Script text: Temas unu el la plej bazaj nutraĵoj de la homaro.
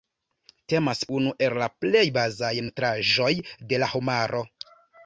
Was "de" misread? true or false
false